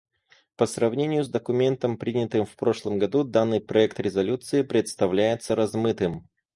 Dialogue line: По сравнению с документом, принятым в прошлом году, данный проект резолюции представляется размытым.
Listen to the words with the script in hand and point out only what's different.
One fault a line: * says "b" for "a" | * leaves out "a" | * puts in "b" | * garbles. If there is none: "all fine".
all fine